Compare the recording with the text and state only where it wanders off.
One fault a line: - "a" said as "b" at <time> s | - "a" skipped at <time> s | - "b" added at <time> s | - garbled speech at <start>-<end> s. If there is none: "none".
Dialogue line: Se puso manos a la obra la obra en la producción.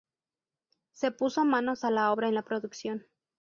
- "la obra" skipped at 2.3 s